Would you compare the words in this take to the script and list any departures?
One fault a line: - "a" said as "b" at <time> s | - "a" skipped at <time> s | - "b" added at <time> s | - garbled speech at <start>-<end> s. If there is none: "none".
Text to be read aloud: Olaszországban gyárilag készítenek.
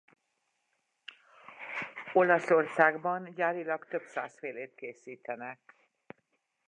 - "több száz félét" added at 3.9 s